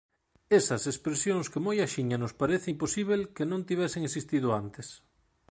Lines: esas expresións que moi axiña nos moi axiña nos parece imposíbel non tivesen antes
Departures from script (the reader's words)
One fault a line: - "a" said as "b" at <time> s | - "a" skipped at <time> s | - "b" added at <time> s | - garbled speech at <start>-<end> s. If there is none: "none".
- "moi axiña nos" skipped at 2.3 s
- "que" added at 3.3 s
- "existido" added at 4.1 s